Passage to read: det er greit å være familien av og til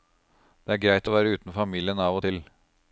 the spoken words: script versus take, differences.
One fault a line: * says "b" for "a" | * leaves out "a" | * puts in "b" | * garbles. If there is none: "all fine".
* puts in "uten"